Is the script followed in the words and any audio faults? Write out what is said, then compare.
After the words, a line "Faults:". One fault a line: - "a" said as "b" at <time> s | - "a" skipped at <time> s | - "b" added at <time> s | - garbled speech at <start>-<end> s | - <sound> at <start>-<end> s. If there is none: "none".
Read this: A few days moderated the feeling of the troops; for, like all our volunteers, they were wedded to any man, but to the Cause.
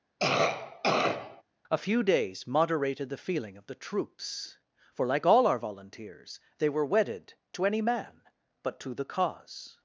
A few days moderated the feeling of the troops; for, like all our volunteers, they were wedded to any man, but to the Cause.
Faults:
- cough at 0.2-1.4 s